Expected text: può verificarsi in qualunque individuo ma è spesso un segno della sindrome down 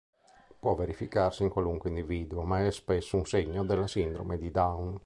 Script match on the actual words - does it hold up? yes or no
no